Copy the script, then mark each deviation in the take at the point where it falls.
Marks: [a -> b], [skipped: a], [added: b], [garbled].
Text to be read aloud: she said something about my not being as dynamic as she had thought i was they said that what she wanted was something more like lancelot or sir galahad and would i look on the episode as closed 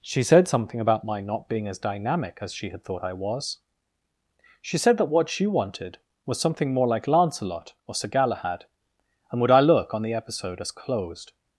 she said something about my not being as dynamic as she had thought i was [they -> she] said that what she wanted was something more like lancelot or sir galahad and would i look on the episode as closed